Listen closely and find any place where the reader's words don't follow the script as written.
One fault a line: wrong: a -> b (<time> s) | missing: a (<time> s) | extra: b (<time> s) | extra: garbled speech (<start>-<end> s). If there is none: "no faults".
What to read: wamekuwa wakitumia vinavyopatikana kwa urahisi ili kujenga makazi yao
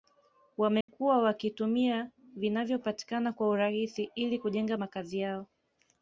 no faults